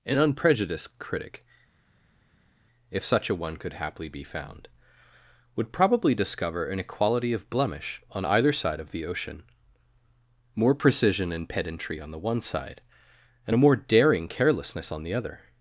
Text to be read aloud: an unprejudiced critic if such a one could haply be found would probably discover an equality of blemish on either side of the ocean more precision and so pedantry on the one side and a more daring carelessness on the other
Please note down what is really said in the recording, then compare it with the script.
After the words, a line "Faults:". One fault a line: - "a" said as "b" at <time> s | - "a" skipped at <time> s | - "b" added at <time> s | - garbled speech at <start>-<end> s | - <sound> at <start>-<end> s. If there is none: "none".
an unprejudiced critic if such a one could haply be found would probably discover an equality of blemish on either side of the ocean more precision and pedantry on the one side and a more daring carelessness on the other
Faults:
- "so" skipped at 11.5 s